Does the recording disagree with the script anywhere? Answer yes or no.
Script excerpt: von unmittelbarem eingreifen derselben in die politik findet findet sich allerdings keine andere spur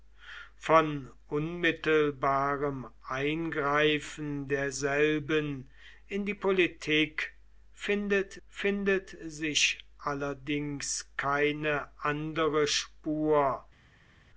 no